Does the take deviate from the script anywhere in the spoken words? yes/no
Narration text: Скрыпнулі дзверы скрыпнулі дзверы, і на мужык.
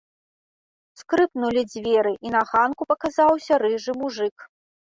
yes